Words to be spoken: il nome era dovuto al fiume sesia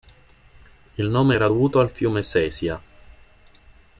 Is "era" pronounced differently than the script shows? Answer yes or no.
no